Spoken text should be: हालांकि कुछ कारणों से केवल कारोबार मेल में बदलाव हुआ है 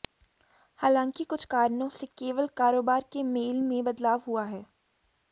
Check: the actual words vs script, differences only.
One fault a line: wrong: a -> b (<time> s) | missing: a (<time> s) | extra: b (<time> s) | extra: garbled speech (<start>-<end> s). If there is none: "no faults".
extra: के (3.1 s)